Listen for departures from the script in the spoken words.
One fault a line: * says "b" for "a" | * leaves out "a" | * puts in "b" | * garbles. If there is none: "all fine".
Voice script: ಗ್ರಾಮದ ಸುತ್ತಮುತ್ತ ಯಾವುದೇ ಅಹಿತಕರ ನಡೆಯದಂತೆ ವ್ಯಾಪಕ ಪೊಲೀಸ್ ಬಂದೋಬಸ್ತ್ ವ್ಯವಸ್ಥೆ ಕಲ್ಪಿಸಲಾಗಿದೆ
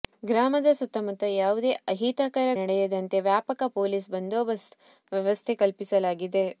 all fine